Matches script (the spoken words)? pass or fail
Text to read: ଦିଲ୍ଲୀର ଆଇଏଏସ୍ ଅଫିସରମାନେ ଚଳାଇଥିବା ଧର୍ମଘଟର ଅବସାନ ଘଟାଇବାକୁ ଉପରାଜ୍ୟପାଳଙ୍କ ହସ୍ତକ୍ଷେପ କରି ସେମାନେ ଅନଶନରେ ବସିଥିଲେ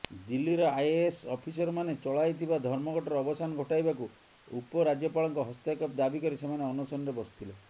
fail